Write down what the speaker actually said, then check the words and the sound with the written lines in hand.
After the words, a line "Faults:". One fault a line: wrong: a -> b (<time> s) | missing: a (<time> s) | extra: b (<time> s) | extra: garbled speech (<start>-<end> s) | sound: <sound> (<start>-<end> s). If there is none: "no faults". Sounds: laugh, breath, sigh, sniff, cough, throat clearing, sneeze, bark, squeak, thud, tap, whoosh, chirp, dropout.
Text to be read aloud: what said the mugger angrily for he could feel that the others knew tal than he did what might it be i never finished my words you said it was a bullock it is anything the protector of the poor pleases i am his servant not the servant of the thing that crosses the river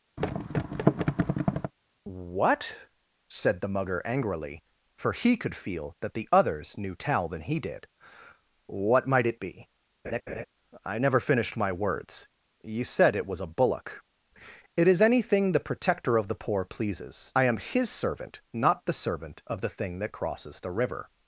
what said the mugger angrily for he could feel that the others knew tal than he did what might it be i never finished my words you said it was a bullock it is anything the protector of the poor pleases i am his servant not the servant of the thing that crosses the river
Faults:
sound: thud (0.2-1.7 s)
sound: laugh (10.0-10.5 s)